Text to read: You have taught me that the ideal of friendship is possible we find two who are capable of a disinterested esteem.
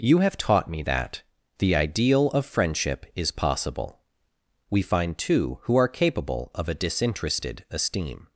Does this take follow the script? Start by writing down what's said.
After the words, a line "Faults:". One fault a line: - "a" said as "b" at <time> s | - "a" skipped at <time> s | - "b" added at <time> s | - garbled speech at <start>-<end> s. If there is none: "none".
You have taught me that the ideal of friendship is possible we find two who are capable of a disinterested esteem.
Faults:
none